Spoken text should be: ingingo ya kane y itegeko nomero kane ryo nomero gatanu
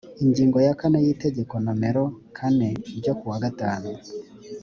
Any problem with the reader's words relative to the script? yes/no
yes